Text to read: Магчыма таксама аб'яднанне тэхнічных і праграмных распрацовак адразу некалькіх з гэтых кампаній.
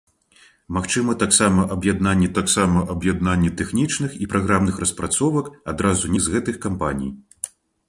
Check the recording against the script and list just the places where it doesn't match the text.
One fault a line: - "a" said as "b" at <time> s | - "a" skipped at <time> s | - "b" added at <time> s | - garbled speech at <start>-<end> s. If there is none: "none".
- "таксама аб'яднанне" added at 2.4 s
- "некалькіх" skipped at 6.1 s